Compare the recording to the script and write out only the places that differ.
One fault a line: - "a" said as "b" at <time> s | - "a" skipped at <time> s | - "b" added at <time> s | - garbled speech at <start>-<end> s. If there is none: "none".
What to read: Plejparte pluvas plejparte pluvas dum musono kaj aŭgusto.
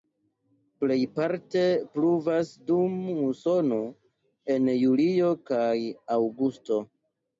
- "plejparte pluvas dum musono" said as "dum musono en julio" at 2.7 s